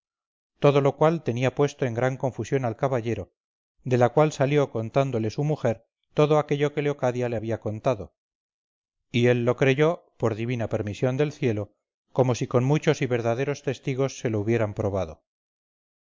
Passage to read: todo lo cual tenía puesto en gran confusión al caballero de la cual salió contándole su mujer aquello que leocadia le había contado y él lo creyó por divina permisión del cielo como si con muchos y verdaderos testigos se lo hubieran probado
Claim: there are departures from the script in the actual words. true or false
true